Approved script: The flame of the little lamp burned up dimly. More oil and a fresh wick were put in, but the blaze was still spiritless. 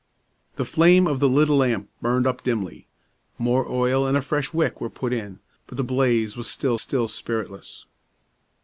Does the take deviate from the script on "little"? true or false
false